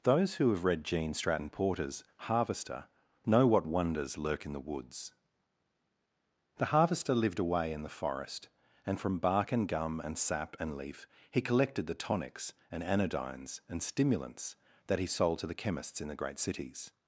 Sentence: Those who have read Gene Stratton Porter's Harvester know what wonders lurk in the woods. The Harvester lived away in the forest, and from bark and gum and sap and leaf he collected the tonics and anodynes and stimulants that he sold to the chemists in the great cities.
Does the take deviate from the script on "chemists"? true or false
false